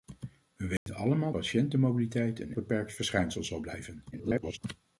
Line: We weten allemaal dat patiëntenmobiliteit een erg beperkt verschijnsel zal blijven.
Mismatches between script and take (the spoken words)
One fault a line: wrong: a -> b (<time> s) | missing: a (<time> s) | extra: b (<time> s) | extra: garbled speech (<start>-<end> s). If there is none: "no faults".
missing: dat (1.3 s)
missing: erg (2.6 s)
extra: garbled speech (4.1-4.6 s)